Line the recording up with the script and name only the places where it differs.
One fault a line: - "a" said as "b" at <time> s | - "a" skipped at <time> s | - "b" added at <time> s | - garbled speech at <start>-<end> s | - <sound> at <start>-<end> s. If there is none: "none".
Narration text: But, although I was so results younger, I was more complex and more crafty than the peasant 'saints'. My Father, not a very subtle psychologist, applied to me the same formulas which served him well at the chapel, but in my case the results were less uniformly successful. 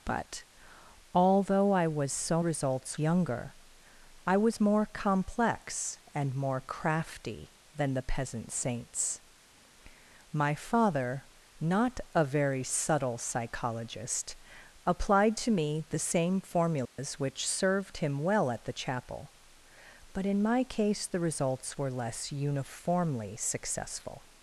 - dropout at 16.9-17.0 s